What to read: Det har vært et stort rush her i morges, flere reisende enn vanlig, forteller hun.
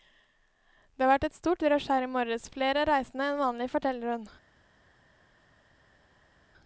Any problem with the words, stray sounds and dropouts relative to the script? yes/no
no